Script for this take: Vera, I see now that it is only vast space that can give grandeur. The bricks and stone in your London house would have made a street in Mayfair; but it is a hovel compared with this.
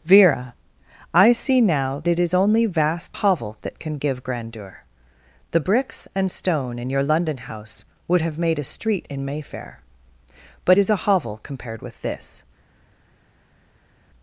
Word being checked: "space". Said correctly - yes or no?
no